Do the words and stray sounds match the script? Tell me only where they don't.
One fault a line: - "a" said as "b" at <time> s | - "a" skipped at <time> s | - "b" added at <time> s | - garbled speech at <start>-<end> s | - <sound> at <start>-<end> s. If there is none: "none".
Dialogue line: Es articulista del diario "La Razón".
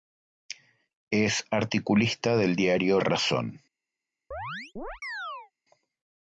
- "La" skipped at 3.0 s
- chirp at 4.3-5.5 s